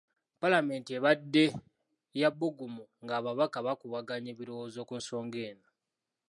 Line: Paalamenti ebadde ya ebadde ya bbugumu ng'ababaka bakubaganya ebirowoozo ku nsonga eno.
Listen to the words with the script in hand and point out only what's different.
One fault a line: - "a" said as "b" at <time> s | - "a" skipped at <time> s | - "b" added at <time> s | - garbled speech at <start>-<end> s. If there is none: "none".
- "ebadde ya" skipped at 2.3 s